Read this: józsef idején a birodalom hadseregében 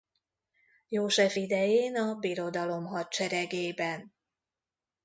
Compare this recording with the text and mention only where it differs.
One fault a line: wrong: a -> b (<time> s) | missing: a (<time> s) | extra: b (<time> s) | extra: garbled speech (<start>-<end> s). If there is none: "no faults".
no faults